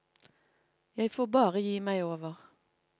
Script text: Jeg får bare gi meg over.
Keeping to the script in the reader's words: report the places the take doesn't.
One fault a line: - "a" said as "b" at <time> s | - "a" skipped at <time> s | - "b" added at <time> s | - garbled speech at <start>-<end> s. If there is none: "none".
none